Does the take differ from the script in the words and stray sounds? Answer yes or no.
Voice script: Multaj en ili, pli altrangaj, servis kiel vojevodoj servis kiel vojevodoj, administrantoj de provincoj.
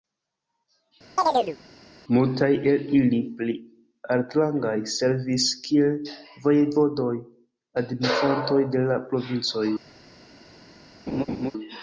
yes